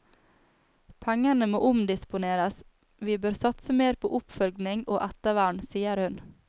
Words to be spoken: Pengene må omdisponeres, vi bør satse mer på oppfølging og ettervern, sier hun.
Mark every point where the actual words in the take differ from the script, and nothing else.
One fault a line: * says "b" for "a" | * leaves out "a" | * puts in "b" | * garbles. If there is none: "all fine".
all fine